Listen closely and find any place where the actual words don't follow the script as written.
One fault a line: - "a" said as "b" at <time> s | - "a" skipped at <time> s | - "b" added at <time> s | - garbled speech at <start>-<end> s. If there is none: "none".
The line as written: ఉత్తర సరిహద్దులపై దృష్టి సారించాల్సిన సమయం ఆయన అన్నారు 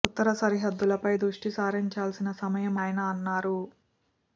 none